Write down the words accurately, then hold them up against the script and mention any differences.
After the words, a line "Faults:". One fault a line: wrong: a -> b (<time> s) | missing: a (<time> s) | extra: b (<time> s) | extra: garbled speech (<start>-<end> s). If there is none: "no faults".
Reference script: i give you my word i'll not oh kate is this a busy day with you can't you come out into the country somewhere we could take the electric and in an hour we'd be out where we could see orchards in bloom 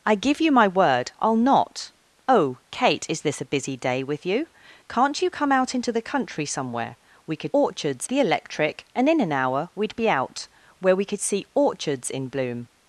i give you my word i'll not oh kate is this a busy day with you can't you come out into the country somewhere we could orchards the electric and in an hour we'd be out where we could see orchards in bloom
Faults:
wrong: take -> orchards (7.5 s)